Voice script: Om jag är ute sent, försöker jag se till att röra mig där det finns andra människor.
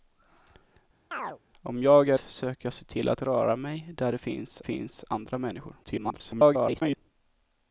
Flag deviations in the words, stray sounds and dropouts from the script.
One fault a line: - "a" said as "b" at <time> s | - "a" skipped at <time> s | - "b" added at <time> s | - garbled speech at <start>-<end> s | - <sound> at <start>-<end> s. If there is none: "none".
- chirp at 1.1-1.4 s
- "ute sent" skipped at 2.2 s
- "finns" added at 4.6 s
- garbled speech at 5.8-7.0 s